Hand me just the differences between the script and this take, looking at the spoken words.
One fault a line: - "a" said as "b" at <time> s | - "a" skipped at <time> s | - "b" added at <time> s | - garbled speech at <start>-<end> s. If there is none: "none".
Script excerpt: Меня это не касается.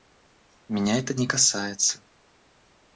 none